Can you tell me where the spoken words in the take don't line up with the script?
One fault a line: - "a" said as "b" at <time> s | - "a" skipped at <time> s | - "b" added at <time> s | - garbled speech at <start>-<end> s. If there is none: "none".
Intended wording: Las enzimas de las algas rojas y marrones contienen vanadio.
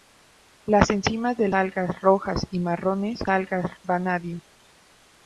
- "las" skipped at 1.5 s
- "contienen" said as "algas" at 3.3 s